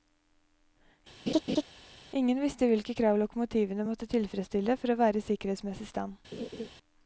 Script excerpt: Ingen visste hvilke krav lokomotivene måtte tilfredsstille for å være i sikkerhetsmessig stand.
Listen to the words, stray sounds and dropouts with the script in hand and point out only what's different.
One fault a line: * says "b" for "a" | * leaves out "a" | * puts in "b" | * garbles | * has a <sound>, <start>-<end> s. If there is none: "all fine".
* has a laugh, 1.3-1.6 s
* has a laugh, 6.3-6.7 s